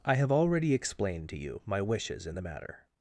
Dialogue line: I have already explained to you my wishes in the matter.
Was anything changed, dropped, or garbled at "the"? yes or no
no